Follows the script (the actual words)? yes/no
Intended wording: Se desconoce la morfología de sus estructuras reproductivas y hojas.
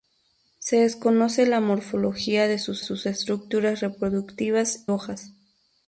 no